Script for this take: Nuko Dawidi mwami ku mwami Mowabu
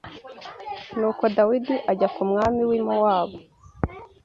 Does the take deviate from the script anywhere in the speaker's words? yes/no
yes